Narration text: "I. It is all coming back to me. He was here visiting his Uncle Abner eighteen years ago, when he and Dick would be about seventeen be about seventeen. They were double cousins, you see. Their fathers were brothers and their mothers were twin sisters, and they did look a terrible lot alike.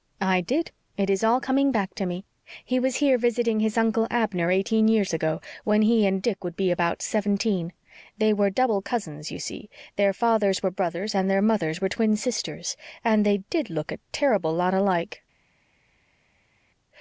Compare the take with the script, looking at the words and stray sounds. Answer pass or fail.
fail